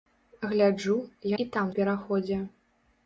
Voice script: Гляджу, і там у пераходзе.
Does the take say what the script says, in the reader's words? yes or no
yes